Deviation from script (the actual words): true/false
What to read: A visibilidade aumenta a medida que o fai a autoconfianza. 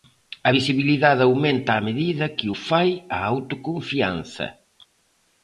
false